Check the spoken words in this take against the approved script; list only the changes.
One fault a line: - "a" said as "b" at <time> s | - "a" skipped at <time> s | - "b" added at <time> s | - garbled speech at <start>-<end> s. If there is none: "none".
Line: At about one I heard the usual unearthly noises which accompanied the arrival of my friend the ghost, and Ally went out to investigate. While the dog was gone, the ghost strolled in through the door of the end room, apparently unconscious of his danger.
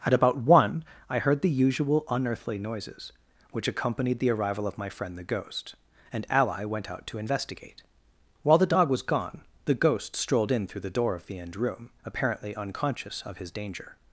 none